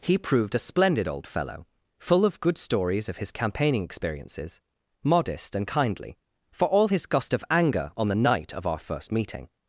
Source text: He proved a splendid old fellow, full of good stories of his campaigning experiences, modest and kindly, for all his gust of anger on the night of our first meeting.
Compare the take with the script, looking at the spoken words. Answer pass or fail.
pass